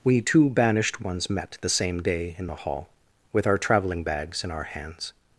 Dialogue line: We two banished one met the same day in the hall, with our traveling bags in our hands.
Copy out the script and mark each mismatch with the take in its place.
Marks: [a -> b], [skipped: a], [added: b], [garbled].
We two banished [one -> ones] met the same day in the hall, with our traveling bags in our hands.